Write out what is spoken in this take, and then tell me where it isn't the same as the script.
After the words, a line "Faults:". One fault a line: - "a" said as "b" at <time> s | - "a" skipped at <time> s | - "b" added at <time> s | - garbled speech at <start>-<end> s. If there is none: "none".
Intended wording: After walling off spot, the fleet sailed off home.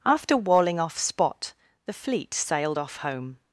After walling off spot, the fleet sailed off home.
Faults:
none